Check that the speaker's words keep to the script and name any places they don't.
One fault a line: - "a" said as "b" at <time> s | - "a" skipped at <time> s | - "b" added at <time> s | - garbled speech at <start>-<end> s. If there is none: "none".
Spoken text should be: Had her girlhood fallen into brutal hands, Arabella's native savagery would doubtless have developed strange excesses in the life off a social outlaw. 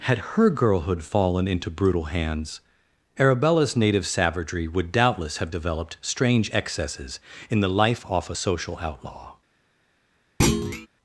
none